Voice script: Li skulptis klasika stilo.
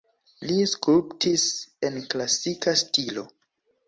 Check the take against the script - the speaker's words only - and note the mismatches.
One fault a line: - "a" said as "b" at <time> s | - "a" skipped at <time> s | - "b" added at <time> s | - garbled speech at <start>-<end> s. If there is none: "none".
- "en" added at 1.9 s